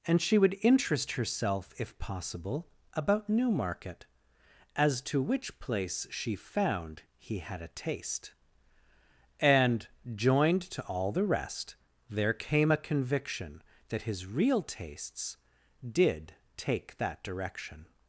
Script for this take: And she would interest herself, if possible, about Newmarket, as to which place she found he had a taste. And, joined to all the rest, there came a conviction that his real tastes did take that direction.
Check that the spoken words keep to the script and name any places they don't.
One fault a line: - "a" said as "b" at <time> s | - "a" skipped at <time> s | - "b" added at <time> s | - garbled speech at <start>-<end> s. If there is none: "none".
none